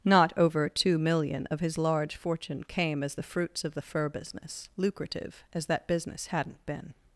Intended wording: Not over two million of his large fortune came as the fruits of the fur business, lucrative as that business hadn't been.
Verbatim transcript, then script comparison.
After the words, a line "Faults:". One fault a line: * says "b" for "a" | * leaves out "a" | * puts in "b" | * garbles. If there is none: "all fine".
Not over two million of his large fortune came as the fruits of the fur business, lucrative as that business hadn't been.
Faults:
all fine